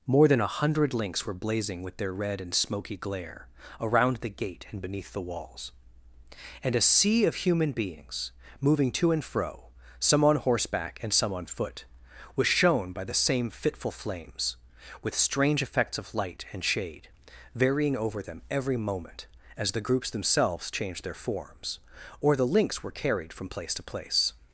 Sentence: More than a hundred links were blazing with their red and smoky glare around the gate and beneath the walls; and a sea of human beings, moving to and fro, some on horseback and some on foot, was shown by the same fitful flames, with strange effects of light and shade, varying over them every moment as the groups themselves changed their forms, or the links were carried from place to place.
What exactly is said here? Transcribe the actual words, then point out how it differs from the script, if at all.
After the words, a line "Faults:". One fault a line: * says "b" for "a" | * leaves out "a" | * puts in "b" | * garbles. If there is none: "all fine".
More than a hundred links were blazing with their red and smoky glare around the gate and beneath the walls; and a sea of human beings, moving to and fro, some on horseback and some on foot, was shown by the same fitful flames, with strange effects of light and shade, varying over them every moment as the groups themselves changed their forms, or the links were carried from place to place.
Faults:
all fine